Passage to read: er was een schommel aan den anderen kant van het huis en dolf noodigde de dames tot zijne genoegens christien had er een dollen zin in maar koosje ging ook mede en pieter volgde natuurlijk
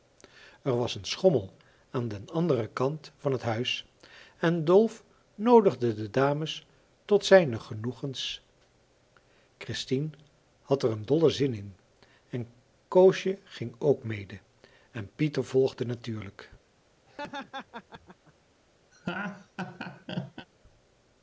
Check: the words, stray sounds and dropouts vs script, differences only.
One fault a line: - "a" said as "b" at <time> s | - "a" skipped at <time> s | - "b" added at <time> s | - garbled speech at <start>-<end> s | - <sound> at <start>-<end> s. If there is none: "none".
- "maar" said as "en" at 12.3 s
- laugh at 17.1-18.3 s
- laugh at 18.9-20.5 s